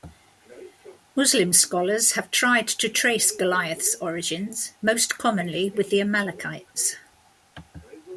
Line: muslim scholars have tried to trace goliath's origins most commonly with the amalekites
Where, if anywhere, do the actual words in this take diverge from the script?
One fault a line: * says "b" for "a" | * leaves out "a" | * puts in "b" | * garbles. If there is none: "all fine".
all fine